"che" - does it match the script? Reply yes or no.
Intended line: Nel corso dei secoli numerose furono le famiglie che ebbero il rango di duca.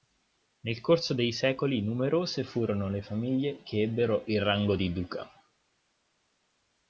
yes